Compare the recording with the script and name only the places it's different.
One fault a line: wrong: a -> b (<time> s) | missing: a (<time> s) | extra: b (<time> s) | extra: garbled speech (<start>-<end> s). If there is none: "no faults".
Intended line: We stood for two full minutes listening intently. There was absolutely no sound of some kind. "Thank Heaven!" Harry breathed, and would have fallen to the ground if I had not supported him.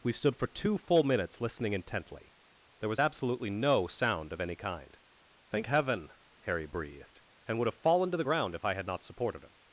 wrong: some -> any (4.4 s)